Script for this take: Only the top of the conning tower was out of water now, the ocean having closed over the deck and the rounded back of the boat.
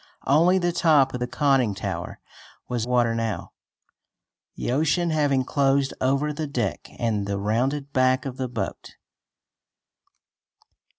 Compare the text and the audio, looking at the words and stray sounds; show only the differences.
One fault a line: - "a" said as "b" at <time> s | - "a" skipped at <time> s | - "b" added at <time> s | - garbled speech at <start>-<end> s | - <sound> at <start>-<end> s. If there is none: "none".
- "out of" skipped at 2.9 s